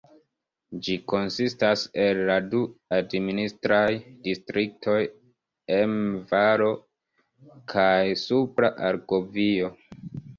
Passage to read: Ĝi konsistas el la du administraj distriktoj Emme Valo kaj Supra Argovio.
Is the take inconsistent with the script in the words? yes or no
no